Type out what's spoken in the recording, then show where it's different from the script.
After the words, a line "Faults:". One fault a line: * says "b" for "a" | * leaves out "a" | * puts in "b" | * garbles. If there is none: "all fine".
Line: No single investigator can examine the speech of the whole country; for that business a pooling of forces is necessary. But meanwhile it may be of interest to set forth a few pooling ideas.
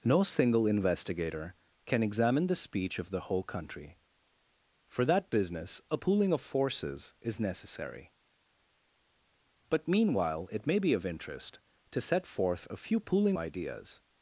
No single investigator can examine the speech of the whole country; for that business a pooling of forces is necessary. But meanwhile it may be of interest to set forth a few pooling ideas.
Faults:
all fine